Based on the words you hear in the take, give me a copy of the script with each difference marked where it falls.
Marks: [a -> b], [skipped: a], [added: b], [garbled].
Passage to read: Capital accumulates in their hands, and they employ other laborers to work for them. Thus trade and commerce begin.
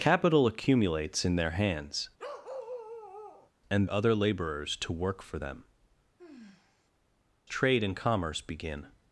Capital accumulates in their hands, and [skipped: they employ] other laborers to work for them. [skipped: Thus] trade and commerce begin.